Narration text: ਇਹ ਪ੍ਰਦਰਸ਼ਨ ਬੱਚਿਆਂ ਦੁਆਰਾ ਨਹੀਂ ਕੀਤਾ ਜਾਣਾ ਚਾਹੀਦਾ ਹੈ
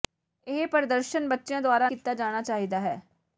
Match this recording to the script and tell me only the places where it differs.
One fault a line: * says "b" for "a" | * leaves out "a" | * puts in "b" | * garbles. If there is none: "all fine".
* leaves out "ਨਹੀਂ"